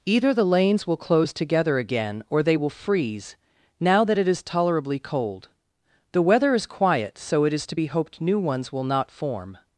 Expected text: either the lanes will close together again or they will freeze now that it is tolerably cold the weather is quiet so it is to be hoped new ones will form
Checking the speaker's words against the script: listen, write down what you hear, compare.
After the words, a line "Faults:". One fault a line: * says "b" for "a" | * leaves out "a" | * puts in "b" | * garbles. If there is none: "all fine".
either the lanes will close together again or they will freeze now that it is tolerably cold the weather is quiet so it is to be hoped new ones will not form
Faults:
* puts in "not"